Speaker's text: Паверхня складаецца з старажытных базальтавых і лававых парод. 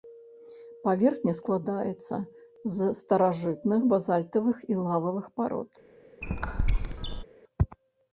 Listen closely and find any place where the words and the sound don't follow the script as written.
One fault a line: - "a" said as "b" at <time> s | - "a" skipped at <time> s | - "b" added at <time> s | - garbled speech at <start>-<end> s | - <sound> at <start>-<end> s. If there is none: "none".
- squeak at 6.2-7.2 s